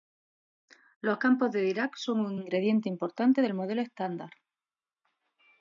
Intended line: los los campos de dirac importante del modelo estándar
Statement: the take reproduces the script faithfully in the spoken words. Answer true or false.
false